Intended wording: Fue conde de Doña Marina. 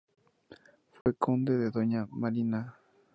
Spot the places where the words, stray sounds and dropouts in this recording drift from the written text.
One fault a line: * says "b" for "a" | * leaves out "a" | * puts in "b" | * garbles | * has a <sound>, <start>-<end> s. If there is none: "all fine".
* has a dropout, 1.0-1.1 s